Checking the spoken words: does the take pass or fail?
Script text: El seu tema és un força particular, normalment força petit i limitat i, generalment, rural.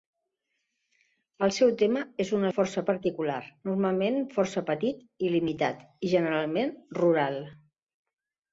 pass